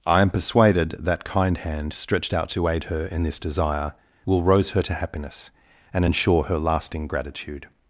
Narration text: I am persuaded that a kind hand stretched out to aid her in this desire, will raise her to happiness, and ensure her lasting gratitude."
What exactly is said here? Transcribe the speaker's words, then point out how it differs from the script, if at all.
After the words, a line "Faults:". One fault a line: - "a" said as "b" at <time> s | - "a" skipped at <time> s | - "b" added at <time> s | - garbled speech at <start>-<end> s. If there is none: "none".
I am persuaded that kind hand stretched out to aid her in this desire, will rose her to happiness, and ensure her lasting gratitude."
Faults:
- "a" skipped at 1.2 s
- "raise" said as "rose" at 4.4 s